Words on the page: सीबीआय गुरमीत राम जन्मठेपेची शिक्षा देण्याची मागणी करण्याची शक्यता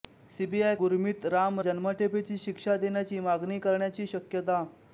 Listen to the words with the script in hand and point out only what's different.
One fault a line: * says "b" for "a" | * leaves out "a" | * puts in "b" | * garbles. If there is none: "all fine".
all fine